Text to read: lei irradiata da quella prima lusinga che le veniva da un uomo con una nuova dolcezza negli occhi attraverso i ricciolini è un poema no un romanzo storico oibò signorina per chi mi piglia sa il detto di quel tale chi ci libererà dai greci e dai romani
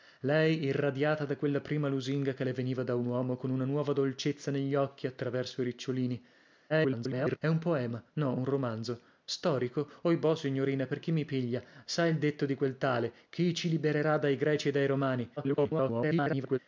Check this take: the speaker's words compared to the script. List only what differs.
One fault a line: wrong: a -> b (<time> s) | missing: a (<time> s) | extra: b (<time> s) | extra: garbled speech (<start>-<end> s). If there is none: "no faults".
extra: garbled speech (6.7-7.4 s)
extra: garbled speech (15.4-16.6 s)